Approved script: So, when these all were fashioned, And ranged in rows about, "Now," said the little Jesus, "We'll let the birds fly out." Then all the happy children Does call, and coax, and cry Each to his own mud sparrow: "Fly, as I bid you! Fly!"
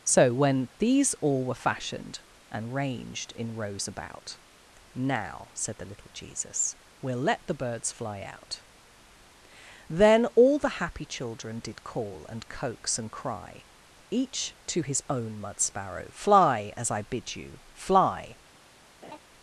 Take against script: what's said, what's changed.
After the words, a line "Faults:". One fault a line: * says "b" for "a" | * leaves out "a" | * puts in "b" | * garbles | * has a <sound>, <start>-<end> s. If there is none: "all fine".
So, when these all were fashioned, And ranged in rows about, "Now," said the little Jesus, "We'll let the birds fly out." Then all the happy children Did call, and coax, and cry Each to his own mud sparrow: "Fly, as I bid you! Fly!"
Faults:
* says "Did" for "Does"
* has a laugh, 19.0-19.2 s